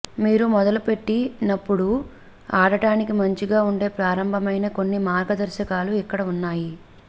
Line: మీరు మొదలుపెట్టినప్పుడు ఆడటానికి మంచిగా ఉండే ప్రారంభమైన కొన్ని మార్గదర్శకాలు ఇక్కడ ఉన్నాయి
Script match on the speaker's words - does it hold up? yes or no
yes